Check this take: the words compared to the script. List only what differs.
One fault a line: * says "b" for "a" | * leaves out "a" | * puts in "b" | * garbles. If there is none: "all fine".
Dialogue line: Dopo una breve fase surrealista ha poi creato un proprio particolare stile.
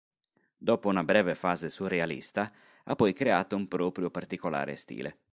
all fine